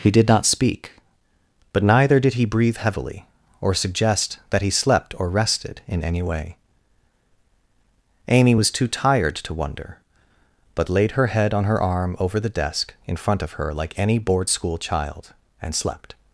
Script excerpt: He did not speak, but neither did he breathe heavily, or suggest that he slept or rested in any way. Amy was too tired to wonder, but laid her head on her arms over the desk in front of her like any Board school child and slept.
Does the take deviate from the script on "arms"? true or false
true